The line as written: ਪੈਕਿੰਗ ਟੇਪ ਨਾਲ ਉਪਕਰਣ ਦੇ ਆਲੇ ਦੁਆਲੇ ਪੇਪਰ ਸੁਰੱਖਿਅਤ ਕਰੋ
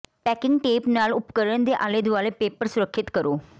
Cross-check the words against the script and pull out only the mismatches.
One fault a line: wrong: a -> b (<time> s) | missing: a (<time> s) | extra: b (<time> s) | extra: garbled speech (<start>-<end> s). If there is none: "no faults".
no faults